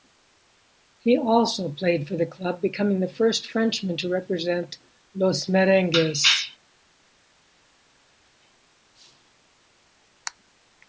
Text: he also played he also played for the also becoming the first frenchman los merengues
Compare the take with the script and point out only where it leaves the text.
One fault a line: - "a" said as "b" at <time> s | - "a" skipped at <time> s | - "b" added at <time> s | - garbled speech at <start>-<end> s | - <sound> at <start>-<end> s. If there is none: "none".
- "he also played" skipped at 2.1 s
- "also" said as "club" at 2.2 s
- "to represent" added at 4.0 s